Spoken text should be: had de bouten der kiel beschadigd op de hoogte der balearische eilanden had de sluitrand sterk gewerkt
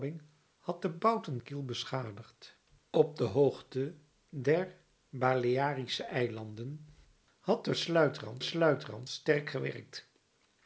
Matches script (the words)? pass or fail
fail